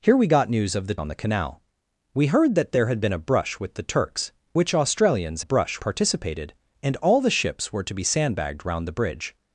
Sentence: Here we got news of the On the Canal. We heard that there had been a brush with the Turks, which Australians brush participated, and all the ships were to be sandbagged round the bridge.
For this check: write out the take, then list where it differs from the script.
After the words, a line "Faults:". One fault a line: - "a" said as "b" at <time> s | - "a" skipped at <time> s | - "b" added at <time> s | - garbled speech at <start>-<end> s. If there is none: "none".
Here we got news of the On the Canal. We heard that there had been a brush with the Turks, which Australians brush participated, and all the ships were to be sandbagged round the bridge.
Faults:
none